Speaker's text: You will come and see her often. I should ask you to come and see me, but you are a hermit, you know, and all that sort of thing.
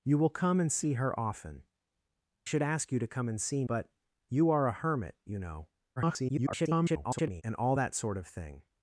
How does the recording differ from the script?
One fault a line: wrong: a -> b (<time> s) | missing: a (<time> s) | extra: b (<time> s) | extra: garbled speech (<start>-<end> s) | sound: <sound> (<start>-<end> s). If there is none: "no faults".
missing: I (1.6 s)
missing: me (3.6 s)
extra: garbled speech (6.0-7.4 s)